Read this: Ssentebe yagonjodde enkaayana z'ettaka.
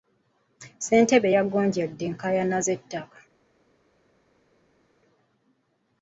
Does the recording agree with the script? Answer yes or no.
yes